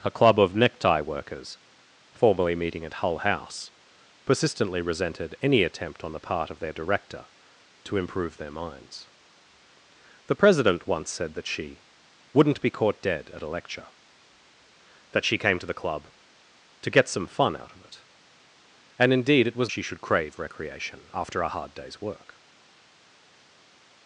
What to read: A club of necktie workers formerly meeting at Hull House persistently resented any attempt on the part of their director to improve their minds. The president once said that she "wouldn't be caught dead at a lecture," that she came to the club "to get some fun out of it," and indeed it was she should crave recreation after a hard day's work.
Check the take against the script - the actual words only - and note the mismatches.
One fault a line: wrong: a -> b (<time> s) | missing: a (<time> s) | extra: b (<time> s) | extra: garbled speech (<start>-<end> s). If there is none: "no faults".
no faults